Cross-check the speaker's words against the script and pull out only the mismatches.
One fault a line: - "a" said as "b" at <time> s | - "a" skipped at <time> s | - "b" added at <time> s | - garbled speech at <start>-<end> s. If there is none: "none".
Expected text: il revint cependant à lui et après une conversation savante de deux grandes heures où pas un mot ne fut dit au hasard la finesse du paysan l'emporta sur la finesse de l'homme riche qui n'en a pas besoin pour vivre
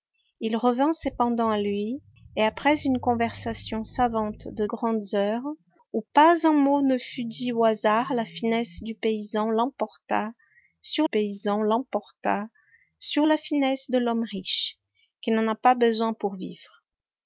- "deux" skipped at 4.7 s
- "paysan l'emporta sur" added at 11.0 s